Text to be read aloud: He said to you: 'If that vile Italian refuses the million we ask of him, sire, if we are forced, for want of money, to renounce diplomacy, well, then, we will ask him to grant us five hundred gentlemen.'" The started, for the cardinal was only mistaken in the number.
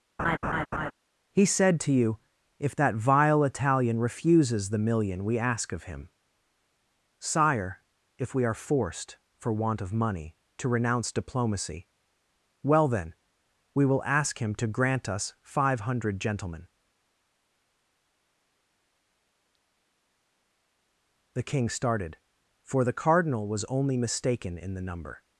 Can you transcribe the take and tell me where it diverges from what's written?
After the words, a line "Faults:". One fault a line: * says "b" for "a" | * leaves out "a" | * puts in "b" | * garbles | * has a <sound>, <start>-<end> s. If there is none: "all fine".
He said to you: 'If that vile Italian refuses the million we ask of him, sire, if we are forced, for want of money, to renounce diplomacy, well, then, we will ask him to grant us five hundred gentlemen.'" The king started, for the cardinal was only mistaken in the number.
Faults:
* has a laugh, 0.2-0.9 s
* puts in "king"